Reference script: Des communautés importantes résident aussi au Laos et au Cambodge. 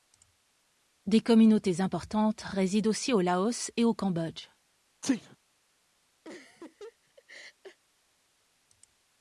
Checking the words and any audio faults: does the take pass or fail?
fail